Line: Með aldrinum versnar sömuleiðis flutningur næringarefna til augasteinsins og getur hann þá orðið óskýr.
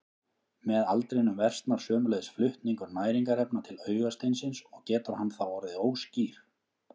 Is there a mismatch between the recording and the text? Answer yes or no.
no